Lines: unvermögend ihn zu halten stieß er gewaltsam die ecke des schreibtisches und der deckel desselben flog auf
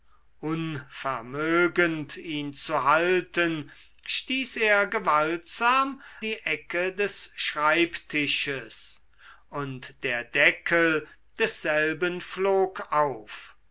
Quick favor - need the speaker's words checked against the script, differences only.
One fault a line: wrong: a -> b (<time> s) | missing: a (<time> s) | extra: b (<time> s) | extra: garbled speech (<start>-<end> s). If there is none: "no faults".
no faults